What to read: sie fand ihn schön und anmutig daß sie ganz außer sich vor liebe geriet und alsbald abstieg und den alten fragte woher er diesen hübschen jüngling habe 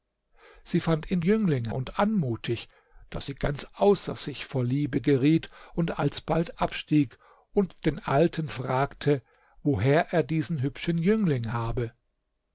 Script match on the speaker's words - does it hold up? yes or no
no